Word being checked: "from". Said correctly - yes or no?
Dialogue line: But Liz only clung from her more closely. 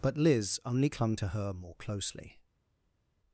no